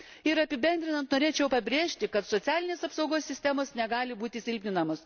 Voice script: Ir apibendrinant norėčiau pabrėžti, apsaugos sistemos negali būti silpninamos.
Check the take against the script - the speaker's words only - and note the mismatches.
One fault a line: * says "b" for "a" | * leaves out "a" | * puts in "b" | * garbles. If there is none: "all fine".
* puts in "kad socialinės"